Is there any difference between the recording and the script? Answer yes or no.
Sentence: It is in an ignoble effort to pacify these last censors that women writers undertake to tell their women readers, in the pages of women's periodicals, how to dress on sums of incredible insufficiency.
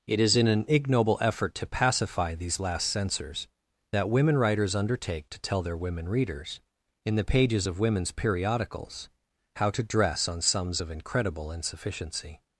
no